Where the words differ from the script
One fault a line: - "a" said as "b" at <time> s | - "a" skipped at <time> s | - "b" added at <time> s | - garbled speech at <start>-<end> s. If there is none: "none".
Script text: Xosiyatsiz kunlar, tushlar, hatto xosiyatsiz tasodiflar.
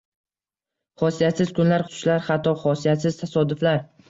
none